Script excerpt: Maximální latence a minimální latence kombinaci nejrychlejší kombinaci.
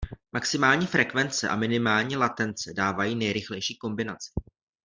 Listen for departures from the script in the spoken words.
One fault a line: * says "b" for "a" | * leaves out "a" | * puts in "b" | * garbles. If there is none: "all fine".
* says "frekvence" for "latence"
* says "dávají" for "kombinaci"